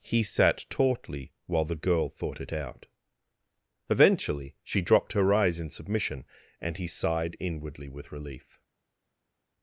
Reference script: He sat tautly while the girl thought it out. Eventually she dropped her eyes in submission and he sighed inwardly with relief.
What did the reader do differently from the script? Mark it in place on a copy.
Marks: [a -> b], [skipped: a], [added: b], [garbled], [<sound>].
He sat tautly while the girl thought it out. Eventually she dropped her eyes in submission and he sighed inwardly with relief.